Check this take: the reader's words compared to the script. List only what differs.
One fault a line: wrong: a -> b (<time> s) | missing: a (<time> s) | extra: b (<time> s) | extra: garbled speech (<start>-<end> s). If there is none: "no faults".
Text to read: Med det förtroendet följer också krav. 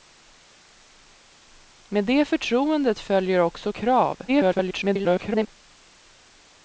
extra: garbled speech (4.3-5.5 s)